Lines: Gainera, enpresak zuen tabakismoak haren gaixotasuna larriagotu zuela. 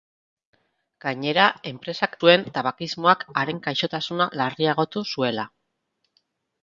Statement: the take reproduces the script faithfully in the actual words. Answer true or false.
true